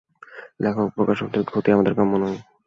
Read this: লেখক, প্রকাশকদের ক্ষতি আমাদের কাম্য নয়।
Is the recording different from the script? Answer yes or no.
no